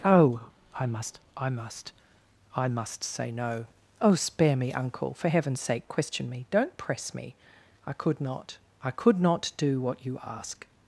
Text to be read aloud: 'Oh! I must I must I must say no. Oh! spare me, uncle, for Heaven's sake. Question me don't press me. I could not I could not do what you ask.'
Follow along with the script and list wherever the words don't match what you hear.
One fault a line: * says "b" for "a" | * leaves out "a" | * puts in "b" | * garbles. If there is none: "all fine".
all fine